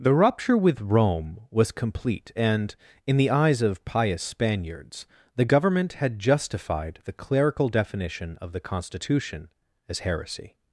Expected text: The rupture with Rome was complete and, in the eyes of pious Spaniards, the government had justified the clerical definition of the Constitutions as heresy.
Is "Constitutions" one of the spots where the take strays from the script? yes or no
yes